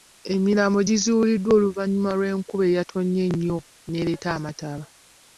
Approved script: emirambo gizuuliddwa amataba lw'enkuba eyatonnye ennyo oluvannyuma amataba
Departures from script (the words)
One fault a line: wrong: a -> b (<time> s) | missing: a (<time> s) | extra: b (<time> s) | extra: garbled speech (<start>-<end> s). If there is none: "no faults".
wrong: amataba -> oluvannyuma (1.6 s)
wrong: oluvannyuma -> n'ereeta (3.9 s)